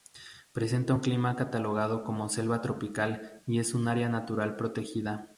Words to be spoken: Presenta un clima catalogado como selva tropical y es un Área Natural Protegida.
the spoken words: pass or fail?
pass